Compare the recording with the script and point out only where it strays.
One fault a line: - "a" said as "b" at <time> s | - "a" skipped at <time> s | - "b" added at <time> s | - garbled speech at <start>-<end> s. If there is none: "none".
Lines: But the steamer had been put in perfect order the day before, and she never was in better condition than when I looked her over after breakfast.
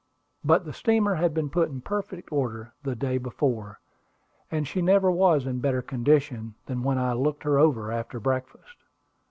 none